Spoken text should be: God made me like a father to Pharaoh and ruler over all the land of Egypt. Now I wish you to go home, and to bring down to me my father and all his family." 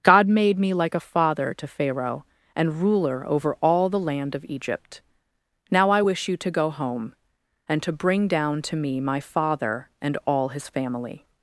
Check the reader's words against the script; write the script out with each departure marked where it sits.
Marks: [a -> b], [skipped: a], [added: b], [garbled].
God made me like a father to Pharaoh and ruler over all the land of Egypt. Now I wish you to go home, and to bring down to me my father and all his family."